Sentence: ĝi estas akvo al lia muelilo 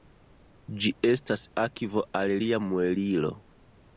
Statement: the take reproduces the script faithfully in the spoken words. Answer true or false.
true